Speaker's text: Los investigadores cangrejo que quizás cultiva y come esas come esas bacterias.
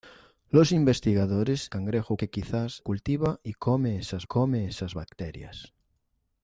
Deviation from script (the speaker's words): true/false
false